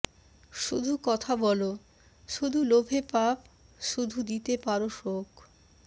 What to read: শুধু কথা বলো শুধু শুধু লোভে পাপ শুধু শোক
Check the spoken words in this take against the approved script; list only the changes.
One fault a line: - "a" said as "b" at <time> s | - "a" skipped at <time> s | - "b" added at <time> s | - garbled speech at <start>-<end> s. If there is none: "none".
- "শুধু" skipped at 2.6 s
- "দিতে পারো" added at 4.2 s